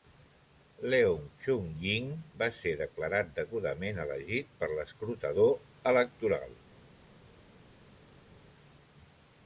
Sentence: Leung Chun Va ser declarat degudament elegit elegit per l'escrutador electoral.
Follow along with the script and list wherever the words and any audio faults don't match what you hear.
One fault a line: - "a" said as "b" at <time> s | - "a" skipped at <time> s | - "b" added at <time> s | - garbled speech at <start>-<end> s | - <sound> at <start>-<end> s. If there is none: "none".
- "Ying" added at 1.8 s
- "elegit" skipped at 4.6 s